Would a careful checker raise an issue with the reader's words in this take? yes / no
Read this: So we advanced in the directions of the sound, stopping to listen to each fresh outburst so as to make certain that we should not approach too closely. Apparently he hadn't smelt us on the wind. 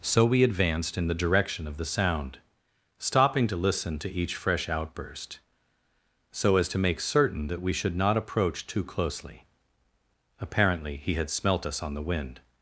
yes